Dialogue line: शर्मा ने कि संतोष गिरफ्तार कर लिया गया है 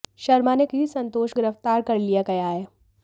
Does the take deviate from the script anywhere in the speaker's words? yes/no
no